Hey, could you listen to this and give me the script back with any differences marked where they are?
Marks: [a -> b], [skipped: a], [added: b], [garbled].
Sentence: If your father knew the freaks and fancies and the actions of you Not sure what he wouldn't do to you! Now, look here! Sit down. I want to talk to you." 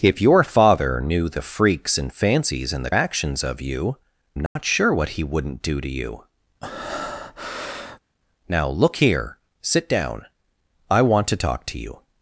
If your father knew the freaks and fancies and the actions of you Not sure what he wouldn't do to you! Now, look here! Sit down. I want to talk to you."